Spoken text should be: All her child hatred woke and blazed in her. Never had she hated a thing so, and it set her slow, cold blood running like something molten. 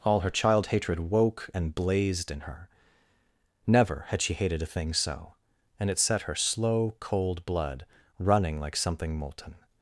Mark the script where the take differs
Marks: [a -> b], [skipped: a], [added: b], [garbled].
All her child hatred woke and blazed in her. Never had she hated a thing so, and it set her slow, cold blood running like something molten.